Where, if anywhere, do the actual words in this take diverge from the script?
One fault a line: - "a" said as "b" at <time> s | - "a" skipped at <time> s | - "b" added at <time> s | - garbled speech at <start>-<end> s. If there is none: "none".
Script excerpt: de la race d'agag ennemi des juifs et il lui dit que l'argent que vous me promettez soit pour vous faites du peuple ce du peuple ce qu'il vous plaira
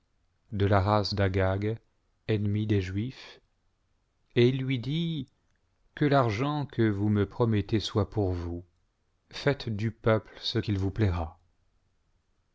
- "du peuple ce" skipped at 10.6 s